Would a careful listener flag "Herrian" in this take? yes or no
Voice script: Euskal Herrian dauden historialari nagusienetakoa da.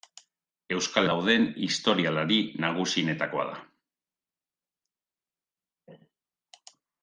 yes